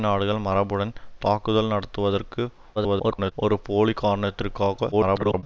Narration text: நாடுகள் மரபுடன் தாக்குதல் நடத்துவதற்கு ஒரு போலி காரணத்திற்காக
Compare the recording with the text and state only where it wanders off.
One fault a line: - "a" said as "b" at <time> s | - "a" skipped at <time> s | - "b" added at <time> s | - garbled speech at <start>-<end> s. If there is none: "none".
- garbled speech at 2.8-3.3 s
- garbled speech at 4.9-5.4 s